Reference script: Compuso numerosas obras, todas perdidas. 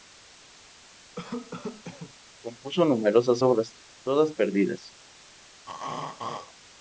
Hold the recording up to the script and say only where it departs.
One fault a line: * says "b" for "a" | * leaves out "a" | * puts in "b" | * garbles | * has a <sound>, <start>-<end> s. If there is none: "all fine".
* has a cough, 1.1-2.1 s
* has a throat clearing, 5.7-6.5 s